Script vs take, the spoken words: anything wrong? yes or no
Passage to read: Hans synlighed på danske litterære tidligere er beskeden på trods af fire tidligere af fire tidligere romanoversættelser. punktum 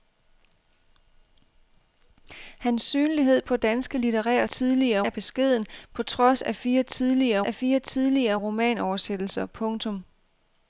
no